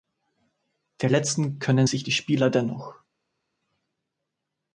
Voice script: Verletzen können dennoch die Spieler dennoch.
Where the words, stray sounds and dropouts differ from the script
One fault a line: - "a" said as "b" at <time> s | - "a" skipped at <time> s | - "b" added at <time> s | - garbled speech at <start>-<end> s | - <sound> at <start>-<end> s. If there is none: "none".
- "dennoch" said as "sich" at 1.8 s